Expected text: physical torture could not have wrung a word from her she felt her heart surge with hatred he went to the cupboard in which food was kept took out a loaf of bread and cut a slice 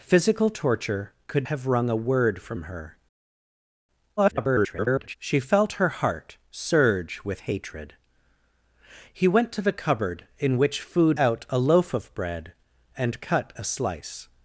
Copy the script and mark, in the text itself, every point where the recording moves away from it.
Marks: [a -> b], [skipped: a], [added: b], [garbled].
physical torture could [skipped: not] have wrung a word from her [garbled] she felt her heart surge with hatred he went to the cupboard in which food [skipped: was kept took] out a loaf of bread and cut a slice